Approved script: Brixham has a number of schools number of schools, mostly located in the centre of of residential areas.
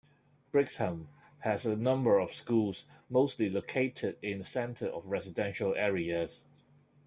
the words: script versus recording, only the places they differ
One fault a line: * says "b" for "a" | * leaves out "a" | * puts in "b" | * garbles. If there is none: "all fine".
* leaves out "number of schools"
* leaves out "of"